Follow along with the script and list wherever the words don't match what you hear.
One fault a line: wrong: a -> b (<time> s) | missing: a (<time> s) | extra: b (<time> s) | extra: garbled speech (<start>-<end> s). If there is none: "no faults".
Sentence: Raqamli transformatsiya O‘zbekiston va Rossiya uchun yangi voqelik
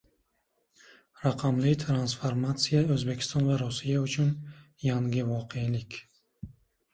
no faults